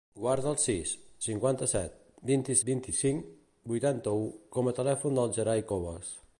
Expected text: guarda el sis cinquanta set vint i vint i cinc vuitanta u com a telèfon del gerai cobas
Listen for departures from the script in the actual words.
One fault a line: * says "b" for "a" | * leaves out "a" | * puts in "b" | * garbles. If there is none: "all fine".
all fine